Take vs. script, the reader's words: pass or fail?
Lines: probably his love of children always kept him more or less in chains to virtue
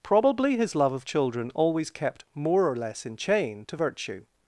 fail